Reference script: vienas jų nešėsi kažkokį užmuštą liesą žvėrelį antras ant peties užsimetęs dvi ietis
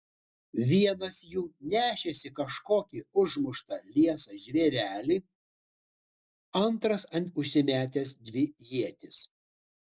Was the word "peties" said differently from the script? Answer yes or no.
yes